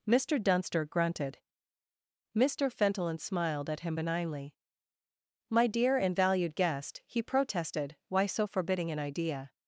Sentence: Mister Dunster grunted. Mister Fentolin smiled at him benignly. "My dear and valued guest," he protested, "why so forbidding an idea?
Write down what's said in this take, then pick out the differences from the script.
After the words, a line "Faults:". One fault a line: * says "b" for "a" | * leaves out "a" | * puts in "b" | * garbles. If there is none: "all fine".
Mister Dunster grunted. Mister Fentolin smiled at him benignly. "My dear and valued guest," he protested, "why so forbidding an idea?
Faults:
all fine